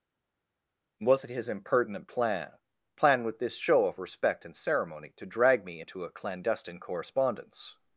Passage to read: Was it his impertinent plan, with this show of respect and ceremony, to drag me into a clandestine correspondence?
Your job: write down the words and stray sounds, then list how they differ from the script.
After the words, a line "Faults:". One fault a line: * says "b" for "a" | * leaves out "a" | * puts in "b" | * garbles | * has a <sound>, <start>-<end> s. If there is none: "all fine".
Was it his impertinent plan plan, with this show of respect and ceremony, to drag me into a clandestine correspondence?
Faults:
* puts in "plan"